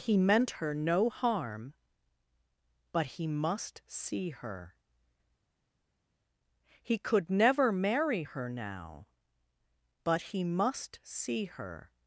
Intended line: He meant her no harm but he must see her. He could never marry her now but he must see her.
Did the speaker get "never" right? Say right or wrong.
right